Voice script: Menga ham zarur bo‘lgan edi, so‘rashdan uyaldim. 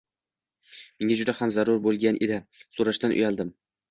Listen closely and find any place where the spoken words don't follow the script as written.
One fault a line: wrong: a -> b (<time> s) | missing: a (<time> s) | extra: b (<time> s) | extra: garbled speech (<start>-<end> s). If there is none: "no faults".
extra: juda (1.2 s)